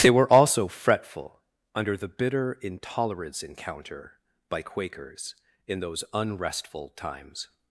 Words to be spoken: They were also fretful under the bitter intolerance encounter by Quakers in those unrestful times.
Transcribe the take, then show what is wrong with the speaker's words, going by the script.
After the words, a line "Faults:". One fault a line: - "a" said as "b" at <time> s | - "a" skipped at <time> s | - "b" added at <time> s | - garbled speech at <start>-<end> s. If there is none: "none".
They were also fretful under the bitter intolerance encounter by Quakers in those unrestful times.
Faults:
none